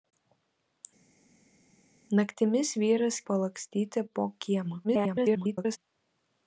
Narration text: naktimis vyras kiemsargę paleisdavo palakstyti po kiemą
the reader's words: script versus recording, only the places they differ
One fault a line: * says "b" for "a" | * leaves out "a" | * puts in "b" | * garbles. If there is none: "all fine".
* leaves out "kiemsargę paleisdavo"
* garbles